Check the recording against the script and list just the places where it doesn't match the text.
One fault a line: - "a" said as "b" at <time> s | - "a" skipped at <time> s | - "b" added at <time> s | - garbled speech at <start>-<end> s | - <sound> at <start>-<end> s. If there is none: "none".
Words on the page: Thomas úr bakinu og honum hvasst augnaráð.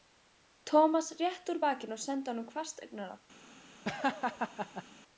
- "rétti" added at 1.2 s
- "sendi" added at 2.1 s
- laugh at 3.8-4.8 s